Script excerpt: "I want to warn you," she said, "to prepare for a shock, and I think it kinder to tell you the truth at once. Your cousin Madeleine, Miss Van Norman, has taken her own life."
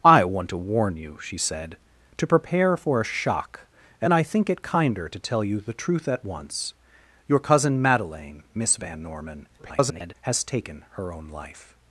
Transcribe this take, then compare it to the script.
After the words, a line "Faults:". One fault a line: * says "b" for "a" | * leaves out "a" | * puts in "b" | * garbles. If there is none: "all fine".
"I want to warn you," she said, "to prepare for a shock, and I think it kinder to tell you the truth at once. Your cousin Madeleine, Miss Van Norman, [garbled] has taken her own life."
Faults:
* garbles